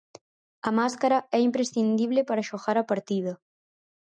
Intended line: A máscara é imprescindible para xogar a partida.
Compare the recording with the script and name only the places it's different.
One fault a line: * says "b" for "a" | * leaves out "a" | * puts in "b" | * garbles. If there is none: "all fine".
all fine